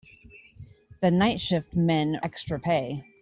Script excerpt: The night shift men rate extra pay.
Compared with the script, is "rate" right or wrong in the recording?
wrong